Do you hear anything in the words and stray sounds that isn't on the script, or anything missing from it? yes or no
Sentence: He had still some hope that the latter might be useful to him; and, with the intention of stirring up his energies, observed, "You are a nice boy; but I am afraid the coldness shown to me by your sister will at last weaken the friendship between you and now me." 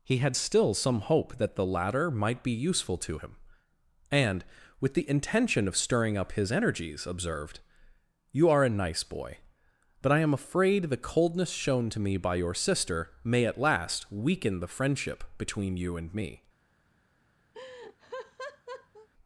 yes